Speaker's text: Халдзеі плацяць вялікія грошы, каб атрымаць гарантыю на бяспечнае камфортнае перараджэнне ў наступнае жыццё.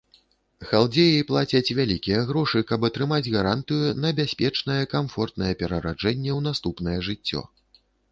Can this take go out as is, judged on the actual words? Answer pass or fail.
pass